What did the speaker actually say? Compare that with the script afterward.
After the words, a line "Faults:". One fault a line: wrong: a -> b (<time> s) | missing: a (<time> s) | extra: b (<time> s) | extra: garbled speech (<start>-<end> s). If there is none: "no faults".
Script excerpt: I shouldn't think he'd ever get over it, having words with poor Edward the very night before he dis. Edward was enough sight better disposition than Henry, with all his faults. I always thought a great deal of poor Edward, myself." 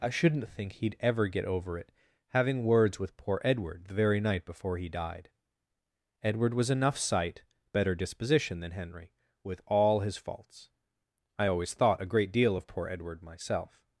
I shouldn't think he'd ever get over it, having words with poor Edward the very night before he died. Edward was enough sight better disposition than Henry, with all his faults. I always thought a great deal of poor Edward, myself."
Faults:
wrong: dis -> died (4.9 s)